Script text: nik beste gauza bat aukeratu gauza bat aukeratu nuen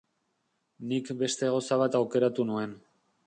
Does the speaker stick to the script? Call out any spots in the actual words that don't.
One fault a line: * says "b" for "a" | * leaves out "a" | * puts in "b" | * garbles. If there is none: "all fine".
* leaves out "gauza bat aukeratu"